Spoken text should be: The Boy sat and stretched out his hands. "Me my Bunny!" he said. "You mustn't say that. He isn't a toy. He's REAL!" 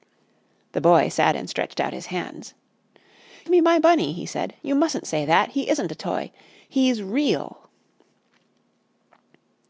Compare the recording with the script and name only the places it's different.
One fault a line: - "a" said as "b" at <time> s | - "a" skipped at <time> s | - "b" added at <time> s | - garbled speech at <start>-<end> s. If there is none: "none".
none